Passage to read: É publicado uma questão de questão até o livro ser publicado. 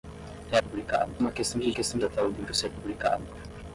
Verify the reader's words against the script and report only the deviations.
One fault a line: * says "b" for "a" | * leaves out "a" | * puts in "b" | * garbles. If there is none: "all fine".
all fine